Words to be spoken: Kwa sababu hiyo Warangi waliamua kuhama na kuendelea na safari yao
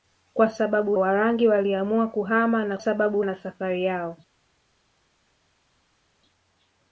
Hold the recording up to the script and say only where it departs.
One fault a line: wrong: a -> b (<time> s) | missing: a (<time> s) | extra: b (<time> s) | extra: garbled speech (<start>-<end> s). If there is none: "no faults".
missing: hiyo (0.9 s)
wrong: kuendelea -> sababu (2.8 s)